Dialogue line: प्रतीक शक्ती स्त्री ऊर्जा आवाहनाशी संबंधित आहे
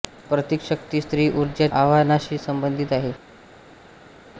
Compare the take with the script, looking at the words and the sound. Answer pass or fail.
pass